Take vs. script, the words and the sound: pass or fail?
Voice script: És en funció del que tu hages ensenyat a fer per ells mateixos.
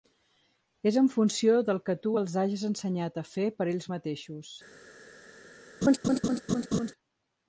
fail